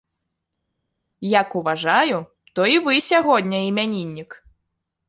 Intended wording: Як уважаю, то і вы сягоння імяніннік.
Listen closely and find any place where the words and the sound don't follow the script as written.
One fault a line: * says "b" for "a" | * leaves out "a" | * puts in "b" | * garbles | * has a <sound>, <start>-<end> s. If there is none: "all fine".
all fine